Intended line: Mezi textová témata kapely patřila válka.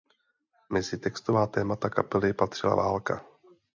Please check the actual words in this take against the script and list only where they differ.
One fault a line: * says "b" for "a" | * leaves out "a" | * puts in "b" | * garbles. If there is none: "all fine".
all fine